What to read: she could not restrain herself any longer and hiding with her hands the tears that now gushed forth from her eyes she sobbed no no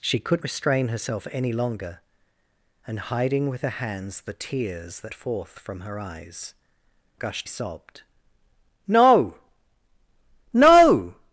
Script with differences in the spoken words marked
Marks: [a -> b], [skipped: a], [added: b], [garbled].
she could [skipped: not] restrain herself any longer and hiding with her hands the tears that [skipped: now gushed] forth from her eyes [she -> gushed] sobbed no no